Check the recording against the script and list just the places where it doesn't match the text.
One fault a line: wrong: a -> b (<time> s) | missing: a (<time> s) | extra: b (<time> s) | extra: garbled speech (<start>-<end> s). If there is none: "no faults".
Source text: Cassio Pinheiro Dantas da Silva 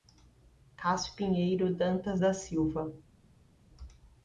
no faults